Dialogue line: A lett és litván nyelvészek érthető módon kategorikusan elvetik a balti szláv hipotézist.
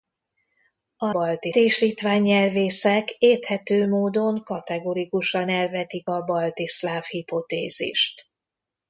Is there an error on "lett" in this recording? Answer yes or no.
yes